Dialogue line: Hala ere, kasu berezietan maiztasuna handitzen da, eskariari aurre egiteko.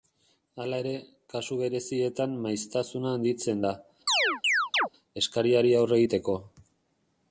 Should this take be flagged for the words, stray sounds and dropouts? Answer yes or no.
yes